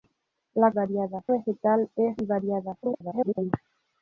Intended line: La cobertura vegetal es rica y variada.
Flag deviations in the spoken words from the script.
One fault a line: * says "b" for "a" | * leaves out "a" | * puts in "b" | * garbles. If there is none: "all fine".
* says "variada" for "cobertura"
* leaves out "rica"
* garbles